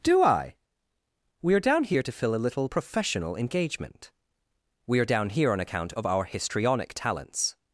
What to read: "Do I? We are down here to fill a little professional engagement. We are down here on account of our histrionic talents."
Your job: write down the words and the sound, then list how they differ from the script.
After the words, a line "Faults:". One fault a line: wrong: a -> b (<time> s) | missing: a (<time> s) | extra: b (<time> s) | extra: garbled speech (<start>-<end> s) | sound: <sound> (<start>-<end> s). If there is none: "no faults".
"Do I? We are down here to fill a little professional engagement. We are down here on account of our histrionic talents."
Faults:
no faults